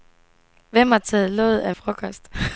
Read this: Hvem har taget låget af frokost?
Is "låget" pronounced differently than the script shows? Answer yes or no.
no